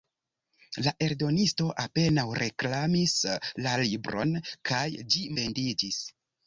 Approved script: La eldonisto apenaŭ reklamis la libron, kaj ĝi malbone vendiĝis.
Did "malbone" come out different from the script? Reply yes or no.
yes